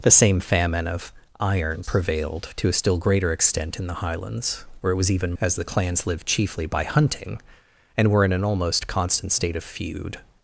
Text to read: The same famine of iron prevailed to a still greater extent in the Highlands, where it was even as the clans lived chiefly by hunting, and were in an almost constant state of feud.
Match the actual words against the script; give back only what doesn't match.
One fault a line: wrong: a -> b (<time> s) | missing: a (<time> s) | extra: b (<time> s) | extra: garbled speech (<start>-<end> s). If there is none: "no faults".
no faults